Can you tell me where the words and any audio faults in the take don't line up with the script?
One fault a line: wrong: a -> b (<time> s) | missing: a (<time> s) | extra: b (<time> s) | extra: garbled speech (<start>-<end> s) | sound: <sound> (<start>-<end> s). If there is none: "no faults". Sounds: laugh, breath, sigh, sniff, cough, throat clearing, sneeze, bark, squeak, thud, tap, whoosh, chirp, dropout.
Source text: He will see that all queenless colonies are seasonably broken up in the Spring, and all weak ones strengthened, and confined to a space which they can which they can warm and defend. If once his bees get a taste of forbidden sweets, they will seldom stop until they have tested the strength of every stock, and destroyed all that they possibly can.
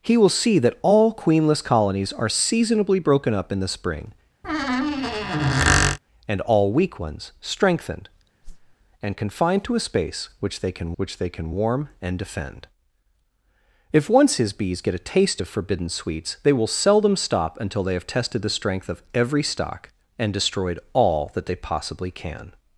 sound: squeak (4.4-6.0 s)
sound: whoosh (8.4-8.8 s)